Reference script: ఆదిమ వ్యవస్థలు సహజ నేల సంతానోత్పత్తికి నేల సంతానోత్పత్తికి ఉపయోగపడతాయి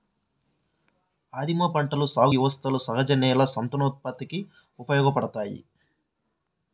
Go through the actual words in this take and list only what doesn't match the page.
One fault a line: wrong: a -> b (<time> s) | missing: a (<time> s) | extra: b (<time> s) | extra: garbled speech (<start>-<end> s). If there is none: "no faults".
extra: పంటల సాగు (1.7 s)
missing: నేల సంతానోత్పత్తికి (4.4 s)